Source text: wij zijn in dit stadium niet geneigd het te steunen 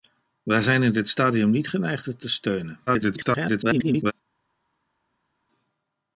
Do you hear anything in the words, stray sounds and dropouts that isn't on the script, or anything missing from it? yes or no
yes